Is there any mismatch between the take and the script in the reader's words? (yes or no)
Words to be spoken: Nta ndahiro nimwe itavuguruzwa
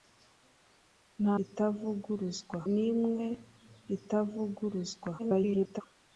yes